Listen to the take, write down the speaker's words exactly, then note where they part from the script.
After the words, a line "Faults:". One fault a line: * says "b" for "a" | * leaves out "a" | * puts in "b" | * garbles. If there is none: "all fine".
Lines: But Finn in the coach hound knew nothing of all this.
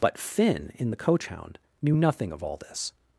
But Finn in the coach hound knew nothing of all this.
Faults:
all fine